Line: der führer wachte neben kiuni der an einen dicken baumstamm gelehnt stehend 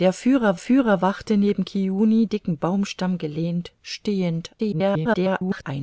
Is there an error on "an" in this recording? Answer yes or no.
yes